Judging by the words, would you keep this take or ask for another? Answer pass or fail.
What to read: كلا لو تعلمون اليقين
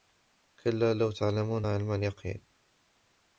fail